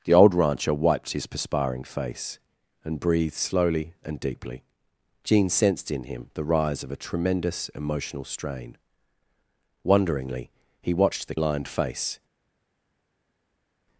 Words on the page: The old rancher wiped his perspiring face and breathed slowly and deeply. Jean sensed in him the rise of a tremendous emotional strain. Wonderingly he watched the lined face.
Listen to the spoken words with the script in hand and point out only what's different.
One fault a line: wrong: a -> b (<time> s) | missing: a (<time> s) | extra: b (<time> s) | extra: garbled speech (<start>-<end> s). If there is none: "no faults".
no faults